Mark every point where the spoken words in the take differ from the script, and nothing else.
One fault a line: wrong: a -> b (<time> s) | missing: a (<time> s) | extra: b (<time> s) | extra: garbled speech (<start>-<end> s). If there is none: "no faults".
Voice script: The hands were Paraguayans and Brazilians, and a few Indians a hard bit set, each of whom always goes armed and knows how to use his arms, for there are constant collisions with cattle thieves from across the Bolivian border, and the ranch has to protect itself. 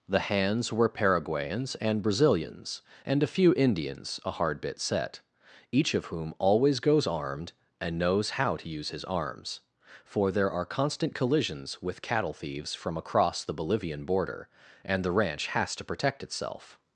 no faults